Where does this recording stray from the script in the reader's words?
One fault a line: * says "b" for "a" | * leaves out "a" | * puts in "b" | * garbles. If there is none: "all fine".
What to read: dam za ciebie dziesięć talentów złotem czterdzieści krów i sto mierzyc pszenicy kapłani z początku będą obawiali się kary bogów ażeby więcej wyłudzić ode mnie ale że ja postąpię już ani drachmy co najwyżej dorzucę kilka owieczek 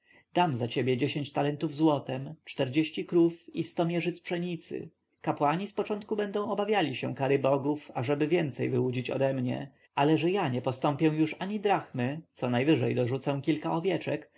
* puts in "nie"